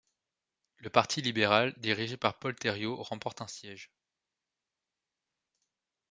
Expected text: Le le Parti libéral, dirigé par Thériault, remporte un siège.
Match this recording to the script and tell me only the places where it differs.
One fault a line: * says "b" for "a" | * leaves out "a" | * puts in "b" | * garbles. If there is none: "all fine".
* leaves out "le"
* puts in "Paul"